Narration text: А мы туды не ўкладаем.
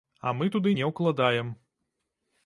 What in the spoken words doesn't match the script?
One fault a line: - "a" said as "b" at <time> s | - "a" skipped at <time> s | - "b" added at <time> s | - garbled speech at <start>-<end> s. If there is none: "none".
none